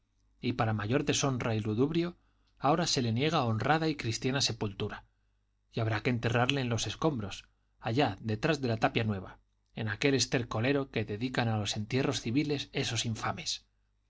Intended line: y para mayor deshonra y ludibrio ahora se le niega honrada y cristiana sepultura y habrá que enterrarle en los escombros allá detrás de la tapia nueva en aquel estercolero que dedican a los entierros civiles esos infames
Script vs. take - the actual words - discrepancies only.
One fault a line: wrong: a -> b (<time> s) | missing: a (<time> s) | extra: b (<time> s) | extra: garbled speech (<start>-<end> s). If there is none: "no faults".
no faults